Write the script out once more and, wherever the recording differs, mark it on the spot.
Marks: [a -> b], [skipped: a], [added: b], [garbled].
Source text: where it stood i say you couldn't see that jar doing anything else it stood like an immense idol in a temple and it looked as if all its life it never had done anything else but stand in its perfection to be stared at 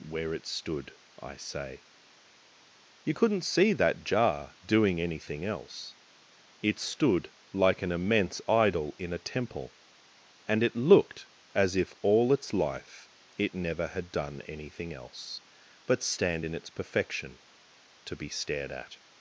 where it stood i say you couldn't see that jar doing anything else it stood like an immense idol in a temple and it looked as if all its life it never had done anything else but stand in its perfection to be stared at